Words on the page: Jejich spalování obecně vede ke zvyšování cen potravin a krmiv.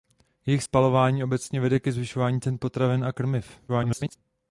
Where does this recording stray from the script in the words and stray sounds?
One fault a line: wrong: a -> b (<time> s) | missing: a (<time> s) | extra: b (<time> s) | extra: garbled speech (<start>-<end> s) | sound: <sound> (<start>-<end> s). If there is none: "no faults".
extra: garbled speech (3.7-4.2 s)